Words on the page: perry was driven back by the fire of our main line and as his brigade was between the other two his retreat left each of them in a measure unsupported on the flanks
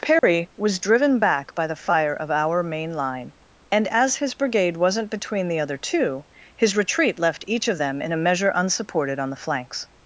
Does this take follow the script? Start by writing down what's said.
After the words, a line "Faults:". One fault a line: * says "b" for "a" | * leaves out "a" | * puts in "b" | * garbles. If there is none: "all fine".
perry was driven back by the fire of our main line and as his brigade wasn't between the other two his retreat left each of them in a measure unsupported on the flanks
Faults:
* says "wasn't" for "was"